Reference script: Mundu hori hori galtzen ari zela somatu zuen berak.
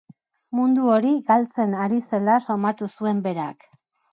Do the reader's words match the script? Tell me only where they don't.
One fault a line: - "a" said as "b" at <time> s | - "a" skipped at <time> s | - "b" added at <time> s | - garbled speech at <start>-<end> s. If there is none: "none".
- "hori" skipped at 1.1 s